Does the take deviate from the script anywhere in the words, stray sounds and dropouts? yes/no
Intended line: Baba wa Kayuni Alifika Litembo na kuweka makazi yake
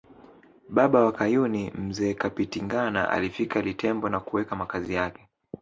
yes